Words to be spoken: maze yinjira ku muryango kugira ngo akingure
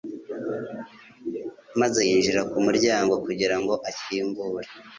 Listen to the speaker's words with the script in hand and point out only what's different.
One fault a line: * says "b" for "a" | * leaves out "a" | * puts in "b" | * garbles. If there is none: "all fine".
all fine